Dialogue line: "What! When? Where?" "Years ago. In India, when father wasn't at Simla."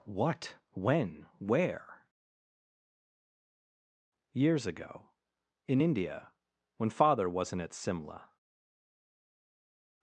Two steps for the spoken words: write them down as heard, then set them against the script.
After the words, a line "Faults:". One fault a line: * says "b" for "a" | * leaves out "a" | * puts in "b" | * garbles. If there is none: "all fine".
"What! When? Where?" "Years ago. In India, when father wasn't at Simla."
Faults:
all fine